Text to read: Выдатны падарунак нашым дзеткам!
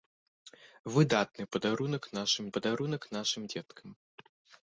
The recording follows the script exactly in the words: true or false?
false